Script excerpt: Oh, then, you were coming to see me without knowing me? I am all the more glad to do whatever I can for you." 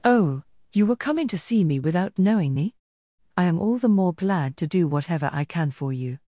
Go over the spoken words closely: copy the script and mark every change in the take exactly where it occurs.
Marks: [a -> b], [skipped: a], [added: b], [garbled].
Oh, [skipped: then,] you were coming to see me without knowing me? I am all the more glad to do whatever I can for you."